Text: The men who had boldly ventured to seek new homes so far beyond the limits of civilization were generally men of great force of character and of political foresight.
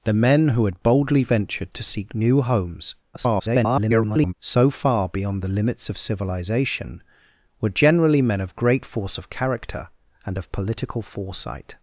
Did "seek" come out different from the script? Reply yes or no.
no